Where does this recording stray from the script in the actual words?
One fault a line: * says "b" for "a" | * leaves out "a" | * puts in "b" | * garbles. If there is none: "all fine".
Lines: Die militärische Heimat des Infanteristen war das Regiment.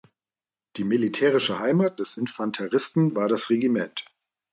all fine